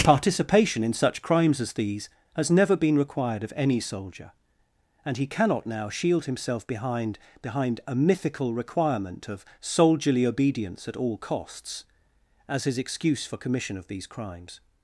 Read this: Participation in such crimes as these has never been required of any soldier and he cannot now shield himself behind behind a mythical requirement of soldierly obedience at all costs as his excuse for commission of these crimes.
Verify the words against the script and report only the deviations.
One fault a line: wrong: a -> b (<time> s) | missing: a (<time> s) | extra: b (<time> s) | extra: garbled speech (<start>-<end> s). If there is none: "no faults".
no faults